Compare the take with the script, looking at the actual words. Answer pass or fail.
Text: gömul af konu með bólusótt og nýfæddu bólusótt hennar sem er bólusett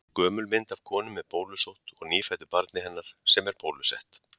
fail